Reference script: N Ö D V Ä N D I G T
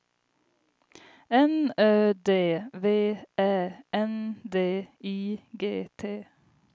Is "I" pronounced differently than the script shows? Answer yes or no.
no